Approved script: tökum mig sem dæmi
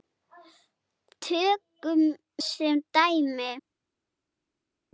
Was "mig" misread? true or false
true